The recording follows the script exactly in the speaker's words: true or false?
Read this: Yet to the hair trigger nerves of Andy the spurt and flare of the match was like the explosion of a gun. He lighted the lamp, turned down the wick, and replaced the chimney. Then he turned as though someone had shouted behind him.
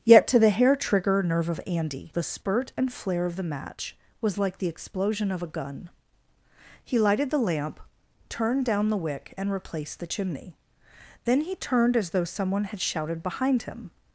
false